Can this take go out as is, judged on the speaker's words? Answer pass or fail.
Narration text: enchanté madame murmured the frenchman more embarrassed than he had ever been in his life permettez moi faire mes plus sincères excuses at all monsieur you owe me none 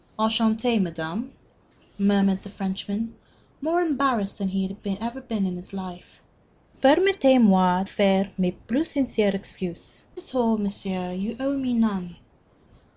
pass